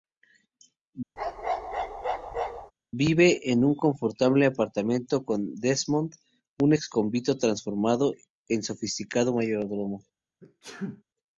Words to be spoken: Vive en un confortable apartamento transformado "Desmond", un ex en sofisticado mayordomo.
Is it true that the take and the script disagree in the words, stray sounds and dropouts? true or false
true